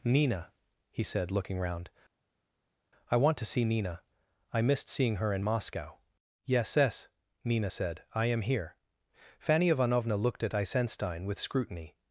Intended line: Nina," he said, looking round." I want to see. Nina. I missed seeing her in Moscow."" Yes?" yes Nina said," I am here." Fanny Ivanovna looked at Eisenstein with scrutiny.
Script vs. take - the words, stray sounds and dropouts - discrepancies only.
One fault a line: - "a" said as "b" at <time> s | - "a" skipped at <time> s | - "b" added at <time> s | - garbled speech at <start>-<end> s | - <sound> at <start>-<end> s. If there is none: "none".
none